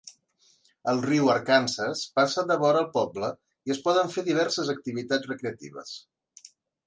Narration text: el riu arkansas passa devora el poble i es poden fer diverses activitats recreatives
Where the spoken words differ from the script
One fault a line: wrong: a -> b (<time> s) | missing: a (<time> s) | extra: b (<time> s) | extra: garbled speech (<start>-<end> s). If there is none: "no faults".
no faults